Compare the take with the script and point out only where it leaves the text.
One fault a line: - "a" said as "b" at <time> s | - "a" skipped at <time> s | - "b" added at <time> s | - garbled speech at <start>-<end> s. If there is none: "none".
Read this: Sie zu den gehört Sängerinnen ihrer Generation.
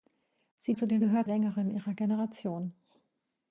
none